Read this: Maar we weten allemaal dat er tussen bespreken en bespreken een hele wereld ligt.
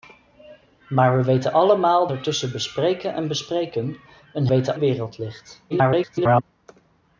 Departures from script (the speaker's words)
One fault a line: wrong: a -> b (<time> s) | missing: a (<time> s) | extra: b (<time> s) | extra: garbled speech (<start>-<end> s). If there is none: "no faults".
missing: dat (2.1 s)
wrong: hele -> weten (4.5 s)
extra: garbled speech (5.7-6.4 s)